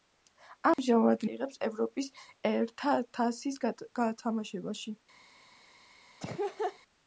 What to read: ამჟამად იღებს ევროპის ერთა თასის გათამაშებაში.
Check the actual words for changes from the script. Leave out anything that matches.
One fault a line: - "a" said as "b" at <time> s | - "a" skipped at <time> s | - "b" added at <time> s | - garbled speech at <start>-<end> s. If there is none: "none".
none